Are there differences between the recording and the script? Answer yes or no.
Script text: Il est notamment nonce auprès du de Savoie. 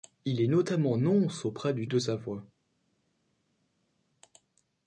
no